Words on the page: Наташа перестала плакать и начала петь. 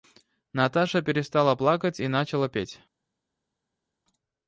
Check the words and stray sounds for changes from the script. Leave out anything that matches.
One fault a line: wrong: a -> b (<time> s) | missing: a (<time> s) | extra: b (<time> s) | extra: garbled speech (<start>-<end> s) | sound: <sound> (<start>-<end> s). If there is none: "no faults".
no faults